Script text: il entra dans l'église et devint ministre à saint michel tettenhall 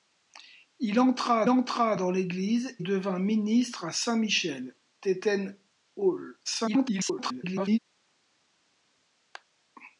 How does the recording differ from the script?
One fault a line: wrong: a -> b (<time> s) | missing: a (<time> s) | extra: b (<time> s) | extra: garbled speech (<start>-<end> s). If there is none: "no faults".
extra: entra (1.5 s)
missing: et (2.8 s)
extra: garbled speech (6.4-7.8 s)